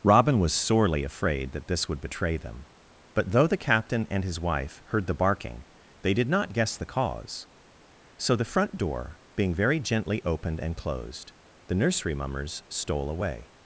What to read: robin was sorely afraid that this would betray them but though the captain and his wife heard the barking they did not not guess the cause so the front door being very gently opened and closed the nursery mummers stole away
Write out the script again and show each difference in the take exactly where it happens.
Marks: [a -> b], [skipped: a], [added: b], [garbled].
robin was sorely afraid that this would betray them but though the captain and his wife heard the barking they did not [skipped: not] guess the cause so the front door being very gently opened and closed the nursery mummers stole away